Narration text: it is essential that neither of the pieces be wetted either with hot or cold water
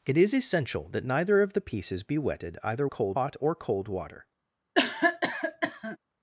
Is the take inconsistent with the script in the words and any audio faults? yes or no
yes